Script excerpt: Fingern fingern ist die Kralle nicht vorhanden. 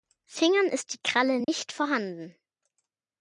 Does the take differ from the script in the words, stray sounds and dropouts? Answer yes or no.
yes